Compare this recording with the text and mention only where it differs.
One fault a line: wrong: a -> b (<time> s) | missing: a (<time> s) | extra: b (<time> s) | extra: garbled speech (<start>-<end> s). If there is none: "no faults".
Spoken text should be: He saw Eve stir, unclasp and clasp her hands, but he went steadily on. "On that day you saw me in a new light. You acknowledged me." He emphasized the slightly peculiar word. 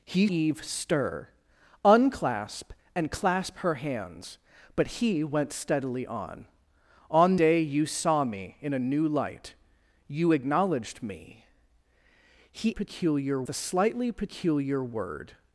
missing: saw (0.3 s)
missing: that (7.4 s)
wrong: emphasized -> peculiar (12.7 s)